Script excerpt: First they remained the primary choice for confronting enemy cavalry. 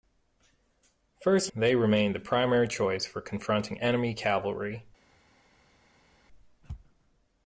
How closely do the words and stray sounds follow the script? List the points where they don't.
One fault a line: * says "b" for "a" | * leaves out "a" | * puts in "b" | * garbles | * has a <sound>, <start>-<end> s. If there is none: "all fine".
all fine